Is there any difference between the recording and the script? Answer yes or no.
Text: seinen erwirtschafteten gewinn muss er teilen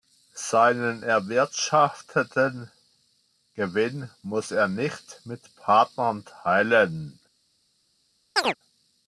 yes